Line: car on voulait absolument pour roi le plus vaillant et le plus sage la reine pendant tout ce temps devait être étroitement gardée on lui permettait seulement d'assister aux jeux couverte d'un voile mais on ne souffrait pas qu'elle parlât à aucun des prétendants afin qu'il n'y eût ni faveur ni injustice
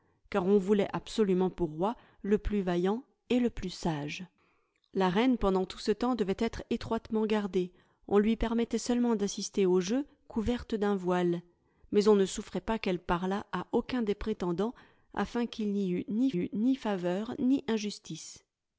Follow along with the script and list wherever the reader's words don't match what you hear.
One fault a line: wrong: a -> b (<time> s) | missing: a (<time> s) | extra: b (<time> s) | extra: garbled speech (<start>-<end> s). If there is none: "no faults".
extra: eût ni (16.4 s)